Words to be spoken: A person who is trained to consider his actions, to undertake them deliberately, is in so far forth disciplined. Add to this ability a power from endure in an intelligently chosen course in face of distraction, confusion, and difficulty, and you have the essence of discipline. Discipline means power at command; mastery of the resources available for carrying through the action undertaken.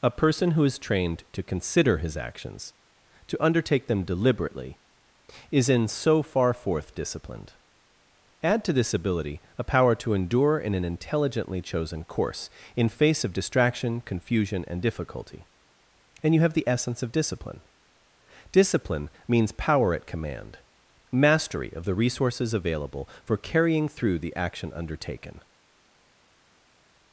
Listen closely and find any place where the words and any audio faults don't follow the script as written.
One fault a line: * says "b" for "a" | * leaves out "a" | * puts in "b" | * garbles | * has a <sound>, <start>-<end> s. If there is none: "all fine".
* says "to" for "from"